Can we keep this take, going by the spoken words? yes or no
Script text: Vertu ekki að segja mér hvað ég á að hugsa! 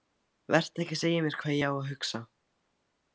yes